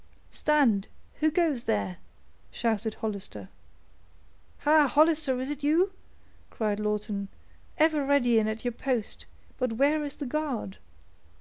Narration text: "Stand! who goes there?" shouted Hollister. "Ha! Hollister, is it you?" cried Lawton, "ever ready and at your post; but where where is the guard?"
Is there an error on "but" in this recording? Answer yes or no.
no